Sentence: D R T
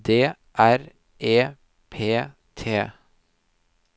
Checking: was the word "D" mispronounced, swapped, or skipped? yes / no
no